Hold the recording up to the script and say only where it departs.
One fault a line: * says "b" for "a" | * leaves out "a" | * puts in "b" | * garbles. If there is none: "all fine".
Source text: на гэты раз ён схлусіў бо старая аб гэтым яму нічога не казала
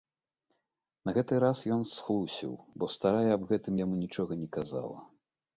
all fine